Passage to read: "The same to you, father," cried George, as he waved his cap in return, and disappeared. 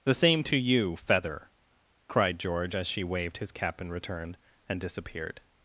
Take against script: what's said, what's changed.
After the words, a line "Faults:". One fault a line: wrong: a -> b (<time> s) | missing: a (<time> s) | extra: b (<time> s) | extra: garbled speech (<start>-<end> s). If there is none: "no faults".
"The same to you, feather," cried George, as she waved his cap in return, and disappeared.
Faults:
wrong: father -> feather (0.9 s)
wrong: he -> she (2.9 s)